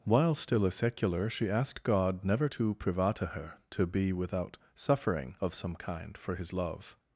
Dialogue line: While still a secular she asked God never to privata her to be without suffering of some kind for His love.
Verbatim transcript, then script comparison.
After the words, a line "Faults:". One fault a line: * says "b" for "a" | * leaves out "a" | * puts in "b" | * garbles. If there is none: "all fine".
While still a secular she asked God never to privata her to be without suffering of some kind for His love.
Faults:
all fine